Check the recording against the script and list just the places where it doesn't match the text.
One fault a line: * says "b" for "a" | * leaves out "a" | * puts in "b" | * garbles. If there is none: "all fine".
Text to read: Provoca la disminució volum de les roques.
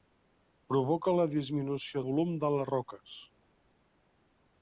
all fine